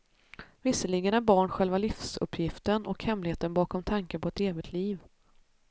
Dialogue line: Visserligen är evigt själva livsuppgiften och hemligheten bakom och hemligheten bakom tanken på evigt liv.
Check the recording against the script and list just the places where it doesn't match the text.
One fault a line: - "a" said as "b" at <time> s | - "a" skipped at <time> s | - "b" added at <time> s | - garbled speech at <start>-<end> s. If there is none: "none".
- "evigt" said as "barn" at 1.2 s
- "och hemligheten bakom" skipped at 3.8 s
- "ett" added at 4.3 s